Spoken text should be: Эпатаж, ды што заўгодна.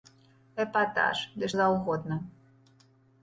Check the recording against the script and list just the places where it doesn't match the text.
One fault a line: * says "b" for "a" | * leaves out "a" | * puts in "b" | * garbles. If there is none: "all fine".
* leaves out "што"